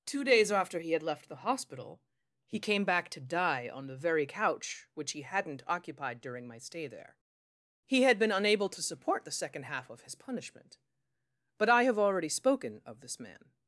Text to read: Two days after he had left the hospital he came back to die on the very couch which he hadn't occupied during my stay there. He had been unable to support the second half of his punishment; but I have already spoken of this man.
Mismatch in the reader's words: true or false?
false